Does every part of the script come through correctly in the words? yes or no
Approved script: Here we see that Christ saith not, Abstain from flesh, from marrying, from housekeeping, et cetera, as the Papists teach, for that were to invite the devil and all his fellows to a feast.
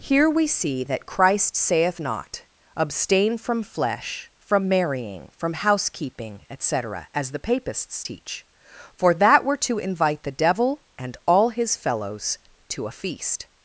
yes